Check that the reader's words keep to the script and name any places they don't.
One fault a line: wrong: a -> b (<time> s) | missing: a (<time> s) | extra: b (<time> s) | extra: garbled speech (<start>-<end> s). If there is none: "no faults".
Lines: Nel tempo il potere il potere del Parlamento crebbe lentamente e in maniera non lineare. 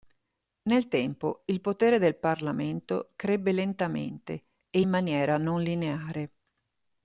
missing: il potere (2.0 s)